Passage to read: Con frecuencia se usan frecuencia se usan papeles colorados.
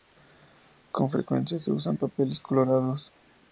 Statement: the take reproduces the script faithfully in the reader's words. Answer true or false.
false